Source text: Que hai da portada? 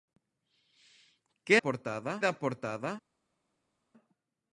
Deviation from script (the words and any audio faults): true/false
true